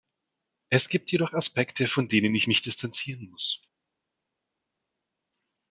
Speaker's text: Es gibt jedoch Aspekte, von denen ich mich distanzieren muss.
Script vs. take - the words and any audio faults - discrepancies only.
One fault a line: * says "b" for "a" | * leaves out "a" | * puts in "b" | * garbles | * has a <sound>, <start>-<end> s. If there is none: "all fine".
all fine